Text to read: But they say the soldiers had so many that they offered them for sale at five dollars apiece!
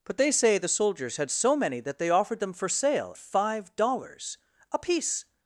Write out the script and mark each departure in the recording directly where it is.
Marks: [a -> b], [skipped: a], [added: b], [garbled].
But they say the soldiers had so many that they offered them for sale [skipped: at] five dollars apiece!